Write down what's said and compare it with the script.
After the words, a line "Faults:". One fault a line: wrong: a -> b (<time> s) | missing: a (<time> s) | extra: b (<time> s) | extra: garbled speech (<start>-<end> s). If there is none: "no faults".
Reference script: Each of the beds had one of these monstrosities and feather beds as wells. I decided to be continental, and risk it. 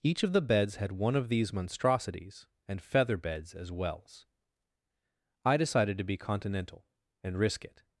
Each of the beds had one of these monstrosities and feather beds as wells. I decided to be continental, and risk it.
Faults:
no faults